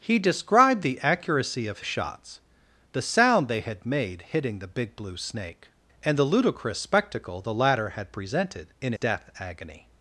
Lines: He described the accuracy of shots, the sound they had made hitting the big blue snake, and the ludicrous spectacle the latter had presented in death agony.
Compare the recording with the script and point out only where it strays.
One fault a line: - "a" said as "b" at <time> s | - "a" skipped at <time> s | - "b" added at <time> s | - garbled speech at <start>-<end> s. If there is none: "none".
none